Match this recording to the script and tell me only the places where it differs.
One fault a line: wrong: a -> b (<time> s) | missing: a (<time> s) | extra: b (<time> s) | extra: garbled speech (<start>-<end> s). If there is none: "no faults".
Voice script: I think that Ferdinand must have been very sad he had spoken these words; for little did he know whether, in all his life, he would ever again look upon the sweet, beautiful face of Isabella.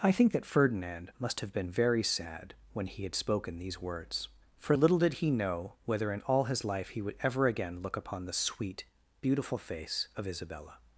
extra: when (2.7 s)